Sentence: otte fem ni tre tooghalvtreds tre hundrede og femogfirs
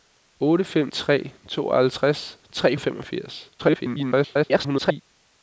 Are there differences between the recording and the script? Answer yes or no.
yes